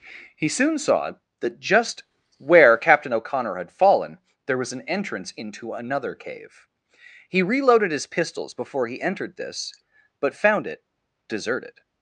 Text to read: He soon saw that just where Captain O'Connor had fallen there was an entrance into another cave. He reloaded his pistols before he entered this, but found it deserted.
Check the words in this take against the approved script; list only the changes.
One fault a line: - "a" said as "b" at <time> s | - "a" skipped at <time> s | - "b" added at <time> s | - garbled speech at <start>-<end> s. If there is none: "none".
none